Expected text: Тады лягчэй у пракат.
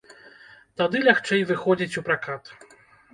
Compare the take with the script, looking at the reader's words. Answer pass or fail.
fail